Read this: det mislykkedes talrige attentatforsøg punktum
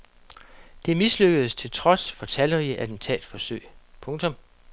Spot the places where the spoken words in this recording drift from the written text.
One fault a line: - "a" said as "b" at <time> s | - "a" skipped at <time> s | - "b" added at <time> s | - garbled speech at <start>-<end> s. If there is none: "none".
- "til trods for" added at 1.5 s